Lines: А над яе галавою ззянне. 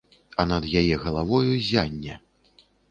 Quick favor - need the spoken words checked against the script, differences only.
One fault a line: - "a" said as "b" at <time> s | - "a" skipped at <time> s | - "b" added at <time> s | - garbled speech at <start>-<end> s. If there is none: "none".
none